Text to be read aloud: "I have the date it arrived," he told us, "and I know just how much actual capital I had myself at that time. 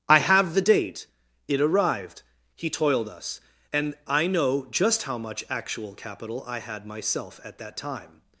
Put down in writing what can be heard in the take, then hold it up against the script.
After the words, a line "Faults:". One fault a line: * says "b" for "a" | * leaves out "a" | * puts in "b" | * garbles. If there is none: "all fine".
"I have the date it arrived," he toiled us, "and I know just how much actual capital I had myself at that time.
Faults:
* says "toiled" for "told"